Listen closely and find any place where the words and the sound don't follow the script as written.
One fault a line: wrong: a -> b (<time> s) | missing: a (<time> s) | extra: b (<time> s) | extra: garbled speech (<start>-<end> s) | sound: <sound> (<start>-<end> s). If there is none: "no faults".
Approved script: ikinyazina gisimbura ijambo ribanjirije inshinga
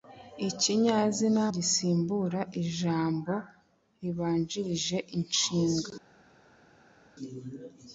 no faults